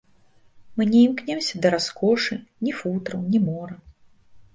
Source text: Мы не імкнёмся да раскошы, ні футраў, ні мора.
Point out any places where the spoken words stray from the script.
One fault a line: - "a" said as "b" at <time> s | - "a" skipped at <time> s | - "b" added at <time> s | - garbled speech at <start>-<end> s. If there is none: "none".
none